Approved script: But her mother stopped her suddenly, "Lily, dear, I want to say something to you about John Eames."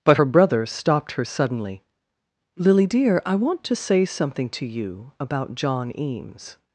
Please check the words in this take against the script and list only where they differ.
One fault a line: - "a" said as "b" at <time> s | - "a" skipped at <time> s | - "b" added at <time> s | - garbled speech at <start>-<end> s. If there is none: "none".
- "mother" said as "brother" at 0.2 s